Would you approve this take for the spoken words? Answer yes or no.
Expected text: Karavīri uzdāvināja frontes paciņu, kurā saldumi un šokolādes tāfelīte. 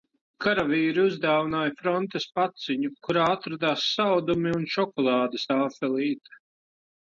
no